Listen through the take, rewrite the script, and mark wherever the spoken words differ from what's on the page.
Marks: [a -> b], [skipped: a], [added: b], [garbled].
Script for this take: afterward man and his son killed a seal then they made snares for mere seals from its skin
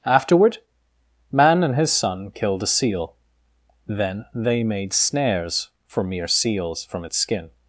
afterward man and his son killed a seal then they made snares for mere seals from its skin